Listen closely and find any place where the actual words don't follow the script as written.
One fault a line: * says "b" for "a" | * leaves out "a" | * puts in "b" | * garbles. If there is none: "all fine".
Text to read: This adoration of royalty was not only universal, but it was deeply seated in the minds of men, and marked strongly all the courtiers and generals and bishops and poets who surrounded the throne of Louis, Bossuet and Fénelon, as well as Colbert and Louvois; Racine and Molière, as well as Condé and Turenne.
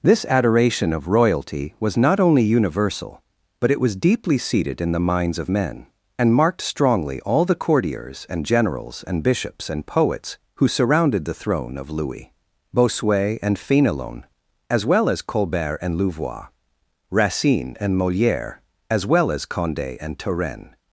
all fine